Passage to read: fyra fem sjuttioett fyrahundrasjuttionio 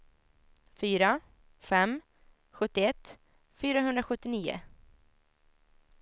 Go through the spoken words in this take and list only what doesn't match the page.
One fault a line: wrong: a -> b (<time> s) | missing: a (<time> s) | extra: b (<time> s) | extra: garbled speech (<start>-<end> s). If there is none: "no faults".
no faults